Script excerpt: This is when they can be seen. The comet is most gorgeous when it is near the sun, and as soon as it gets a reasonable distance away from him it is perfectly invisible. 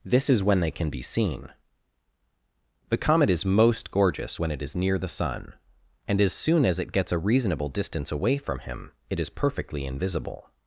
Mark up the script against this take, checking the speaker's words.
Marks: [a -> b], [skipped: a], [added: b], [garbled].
This is when they can be seen. The comet is most gorgeous when it is near the sun, and as soon as it gets a reasonable distance away from him it is perfectly invisible.